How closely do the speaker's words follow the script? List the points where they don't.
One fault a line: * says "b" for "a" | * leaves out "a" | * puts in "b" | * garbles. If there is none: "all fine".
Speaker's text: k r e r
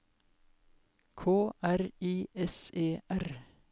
* puts in "i s"